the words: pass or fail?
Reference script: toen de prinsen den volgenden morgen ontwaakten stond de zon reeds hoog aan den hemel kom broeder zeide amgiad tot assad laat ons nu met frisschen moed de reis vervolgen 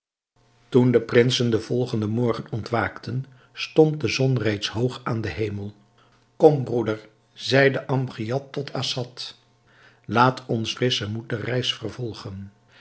fail